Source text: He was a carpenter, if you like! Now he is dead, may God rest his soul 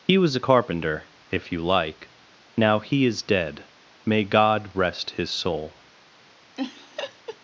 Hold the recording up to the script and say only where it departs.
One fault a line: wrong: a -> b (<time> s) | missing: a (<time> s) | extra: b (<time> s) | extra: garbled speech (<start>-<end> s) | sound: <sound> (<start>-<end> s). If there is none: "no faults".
sound: laugh (6.6-7.4 s)